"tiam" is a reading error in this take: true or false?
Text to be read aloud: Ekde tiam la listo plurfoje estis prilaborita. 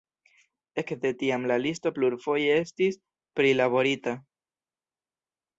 false